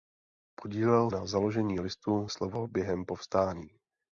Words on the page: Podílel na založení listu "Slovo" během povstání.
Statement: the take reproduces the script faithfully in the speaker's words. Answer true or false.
true